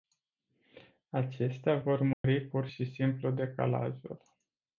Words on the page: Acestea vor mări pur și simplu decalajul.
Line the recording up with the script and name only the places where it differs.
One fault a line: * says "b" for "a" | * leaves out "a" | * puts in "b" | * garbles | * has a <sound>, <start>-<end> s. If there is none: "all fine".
* has a dropout, 2.1-2.2 s